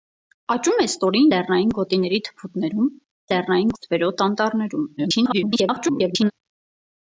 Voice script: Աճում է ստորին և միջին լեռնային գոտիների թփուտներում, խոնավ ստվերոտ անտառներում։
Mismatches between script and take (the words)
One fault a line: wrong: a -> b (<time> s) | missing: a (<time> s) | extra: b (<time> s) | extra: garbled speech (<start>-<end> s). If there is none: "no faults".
missing: և միջին (1.3 s)
wrong: խոնավ -> լեռնային (3.3 s)
extra: garbled speech (5.0-6.3 s)